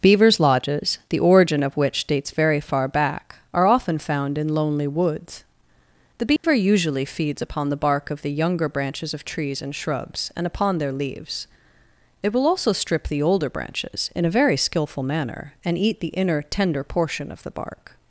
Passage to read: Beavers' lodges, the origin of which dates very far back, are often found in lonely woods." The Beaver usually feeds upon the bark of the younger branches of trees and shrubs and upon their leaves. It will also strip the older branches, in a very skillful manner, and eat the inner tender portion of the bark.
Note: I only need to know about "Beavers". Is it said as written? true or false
true